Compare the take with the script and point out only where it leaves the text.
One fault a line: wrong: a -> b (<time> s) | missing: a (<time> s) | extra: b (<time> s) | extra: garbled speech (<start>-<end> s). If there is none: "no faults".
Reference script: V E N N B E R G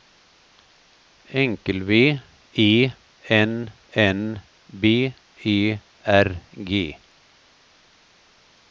no faults